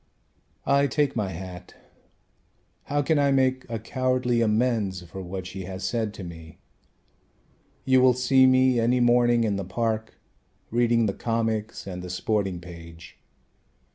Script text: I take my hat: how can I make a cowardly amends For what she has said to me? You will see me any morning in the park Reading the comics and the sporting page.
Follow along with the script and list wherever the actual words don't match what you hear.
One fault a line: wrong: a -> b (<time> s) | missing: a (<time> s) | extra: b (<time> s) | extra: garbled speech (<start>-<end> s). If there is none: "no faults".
no faults